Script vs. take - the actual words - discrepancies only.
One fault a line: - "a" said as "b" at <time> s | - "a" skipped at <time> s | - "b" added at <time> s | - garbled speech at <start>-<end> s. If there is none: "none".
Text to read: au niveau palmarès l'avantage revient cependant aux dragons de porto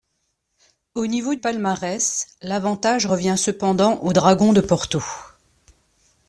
none